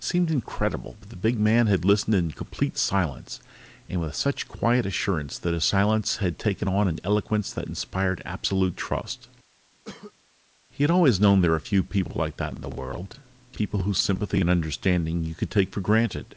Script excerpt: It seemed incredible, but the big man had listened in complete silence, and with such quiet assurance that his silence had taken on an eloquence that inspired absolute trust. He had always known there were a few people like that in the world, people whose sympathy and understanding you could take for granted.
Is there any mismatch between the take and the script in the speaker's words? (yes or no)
no